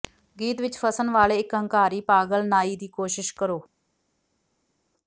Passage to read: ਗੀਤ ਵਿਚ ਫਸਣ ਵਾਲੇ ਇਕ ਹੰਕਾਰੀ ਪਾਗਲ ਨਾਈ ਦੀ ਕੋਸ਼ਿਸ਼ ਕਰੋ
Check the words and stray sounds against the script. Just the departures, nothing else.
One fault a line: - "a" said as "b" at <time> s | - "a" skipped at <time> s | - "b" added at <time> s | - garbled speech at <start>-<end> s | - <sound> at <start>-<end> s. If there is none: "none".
none